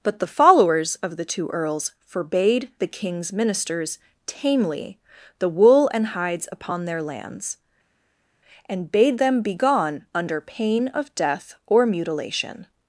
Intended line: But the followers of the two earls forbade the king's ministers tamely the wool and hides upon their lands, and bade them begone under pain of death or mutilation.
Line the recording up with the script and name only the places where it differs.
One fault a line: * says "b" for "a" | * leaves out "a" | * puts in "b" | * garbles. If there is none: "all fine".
all fine